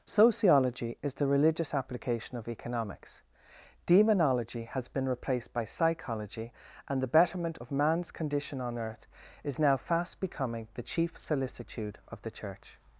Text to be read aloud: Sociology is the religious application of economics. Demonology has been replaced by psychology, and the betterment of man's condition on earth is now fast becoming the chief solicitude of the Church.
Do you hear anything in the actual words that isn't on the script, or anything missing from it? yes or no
no